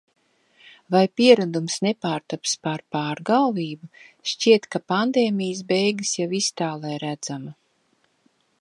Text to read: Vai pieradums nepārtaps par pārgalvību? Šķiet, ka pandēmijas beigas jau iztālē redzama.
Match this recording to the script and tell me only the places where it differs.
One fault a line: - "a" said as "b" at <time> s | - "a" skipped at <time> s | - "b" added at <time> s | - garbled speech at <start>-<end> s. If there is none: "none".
none